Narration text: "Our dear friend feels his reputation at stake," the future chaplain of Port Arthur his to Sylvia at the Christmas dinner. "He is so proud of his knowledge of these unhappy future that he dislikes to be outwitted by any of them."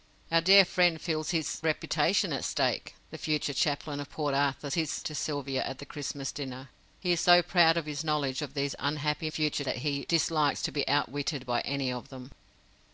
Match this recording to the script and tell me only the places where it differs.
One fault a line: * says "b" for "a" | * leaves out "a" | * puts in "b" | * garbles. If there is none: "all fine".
all fine